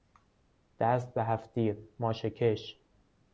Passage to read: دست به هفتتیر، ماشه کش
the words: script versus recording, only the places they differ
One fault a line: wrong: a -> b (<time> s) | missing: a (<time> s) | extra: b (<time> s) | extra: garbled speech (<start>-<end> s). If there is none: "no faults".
no faults